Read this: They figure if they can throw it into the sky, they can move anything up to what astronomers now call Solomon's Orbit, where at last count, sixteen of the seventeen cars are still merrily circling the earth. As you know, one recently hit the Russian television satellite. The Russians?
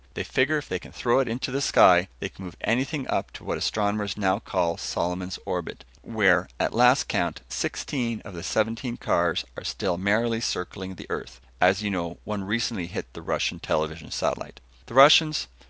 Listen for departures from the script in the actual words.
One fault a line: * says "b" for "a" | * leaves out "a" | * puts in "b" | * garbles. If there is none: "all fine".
all fine